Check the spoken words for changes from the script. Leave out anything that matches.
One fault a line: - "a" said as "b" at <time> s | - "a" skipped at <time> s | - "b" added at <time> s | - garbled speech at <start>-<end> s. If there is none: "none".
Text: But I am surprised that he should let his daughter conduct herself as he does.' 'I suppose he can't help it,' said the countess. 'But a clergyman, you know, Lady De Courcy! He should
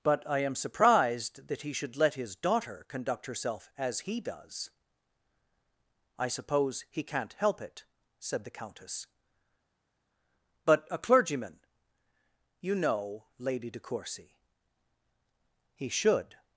none